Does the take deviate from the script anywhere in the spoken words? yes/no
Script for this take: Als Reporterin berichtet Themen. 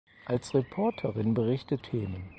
no